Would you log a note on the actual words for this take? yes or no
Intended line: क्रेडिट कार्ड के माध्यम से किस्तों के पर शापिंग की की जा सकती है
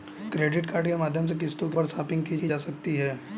no